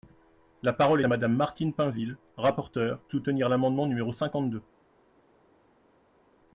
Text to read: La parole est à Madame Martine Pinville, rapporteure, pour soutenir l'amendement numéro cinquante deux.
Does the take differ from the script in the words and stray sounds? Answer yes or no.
yes